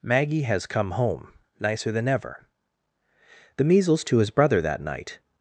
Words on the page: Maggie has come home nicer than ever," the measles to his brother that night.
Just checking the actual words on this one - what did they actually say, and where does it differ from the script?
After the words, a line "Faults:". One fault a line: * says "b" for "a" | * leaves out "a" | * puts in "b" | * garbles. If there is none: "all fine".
Maggie has come home nicer than ever," the measles to his brother that night.
Faults:
all fine